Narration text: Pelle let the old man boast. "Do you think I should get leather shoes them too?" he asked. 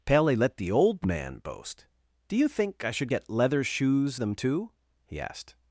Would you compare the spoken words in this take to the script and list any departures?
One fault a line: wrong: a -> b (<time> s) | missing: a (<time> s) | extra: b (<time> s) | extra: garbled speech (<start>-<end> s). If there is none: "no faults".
no faults